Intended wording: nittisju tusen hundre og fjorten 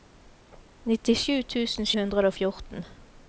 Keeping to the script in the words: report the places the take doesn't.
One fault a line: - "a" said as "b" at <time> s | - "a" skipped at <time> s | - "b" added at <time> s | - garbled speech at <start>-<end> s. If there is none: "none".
none